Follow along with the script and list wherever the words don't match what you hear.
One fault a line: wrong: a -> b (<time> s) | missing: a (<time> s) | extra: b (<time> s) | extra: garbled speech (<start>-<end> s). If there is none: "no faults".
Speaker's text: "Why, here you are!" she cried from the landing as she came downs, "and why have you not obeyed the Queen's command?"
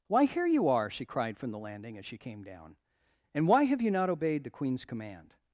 wrong: downs -> down (2.4 s)